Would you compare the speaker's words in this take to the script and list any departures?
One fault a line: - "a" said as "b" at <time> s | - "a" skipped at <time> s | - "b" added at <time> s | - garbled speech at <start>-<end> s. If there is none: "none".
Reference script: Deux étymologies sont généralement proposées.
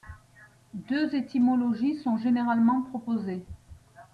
none